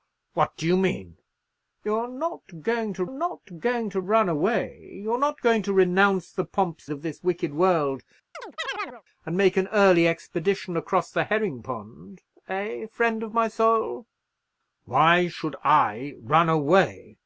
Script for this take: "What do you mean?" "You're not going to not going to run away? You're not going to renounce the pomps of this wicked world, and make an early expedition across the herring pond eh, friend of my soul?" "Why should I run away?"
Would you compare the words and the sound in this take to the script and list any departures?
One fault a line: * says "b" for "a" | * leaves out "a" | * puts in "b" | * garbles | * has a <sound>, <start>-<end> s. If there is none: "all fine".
* has a chirp, 8.3-9.0 s